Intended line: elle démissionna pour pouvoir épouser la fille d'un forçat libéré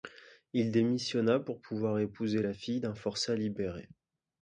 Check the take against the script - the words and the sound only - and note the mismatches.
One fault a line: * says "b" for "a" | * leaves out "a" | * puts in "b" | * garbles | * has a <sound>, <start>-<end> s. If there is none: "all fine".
* says "il" for "elle"